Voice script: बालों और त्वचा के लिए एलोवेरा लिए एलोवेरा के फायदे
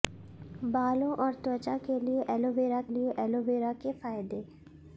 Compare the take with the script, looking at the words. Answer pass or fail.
pass